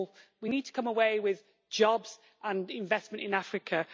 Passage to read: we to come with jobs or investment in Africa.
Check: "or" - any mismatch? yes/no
yes